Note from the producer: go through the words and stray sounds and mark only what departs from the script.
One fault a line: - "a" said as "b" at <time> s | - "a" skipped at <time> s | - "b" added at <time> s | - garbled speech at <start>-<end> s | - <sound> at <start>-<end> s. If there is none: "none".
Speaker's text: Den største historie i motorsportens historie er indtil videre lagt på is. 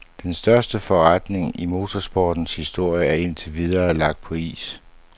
- "historie" said as "forretning" at 0.8 s